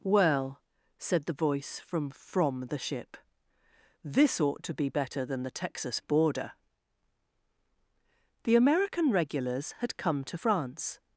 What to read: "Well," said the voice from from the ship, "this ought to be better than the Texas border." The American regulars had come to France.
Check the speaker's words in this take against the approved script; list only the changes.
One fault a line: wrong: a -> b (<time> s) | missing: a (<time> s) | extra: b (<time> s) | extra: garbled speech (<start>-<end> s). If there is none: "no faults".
no faults